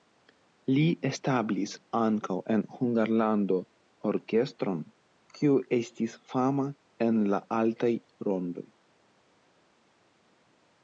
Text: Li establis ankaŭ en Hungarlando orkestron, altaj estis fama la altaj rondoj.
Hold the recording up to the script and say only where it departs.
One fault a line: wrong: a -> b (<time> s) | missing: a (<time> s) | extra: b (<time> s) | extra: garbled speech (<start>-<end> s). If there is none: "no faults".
wrong: altaj -> kiu (5.4 s)
extra: en (7.1 s)